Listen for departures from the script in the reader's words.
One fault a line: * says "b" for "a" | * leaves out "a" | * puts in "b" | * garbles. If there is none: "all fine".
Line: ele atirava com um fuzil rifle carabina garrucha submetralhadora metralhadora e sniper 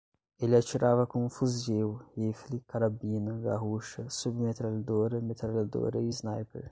all fine